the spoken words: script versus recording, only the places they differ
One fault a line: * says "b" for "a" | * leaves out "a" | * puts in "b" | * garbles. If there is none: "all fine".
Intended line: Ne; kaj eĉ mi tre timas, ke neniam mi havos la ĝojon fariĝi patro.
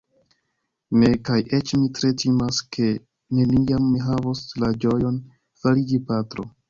all fine